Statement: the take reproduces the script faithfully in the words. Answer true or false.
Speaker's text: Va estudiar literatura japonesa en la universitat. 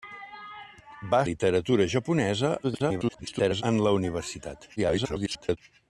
false